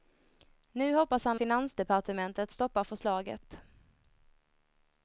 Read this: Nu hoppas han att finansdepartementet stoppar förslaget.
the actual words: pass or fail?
fail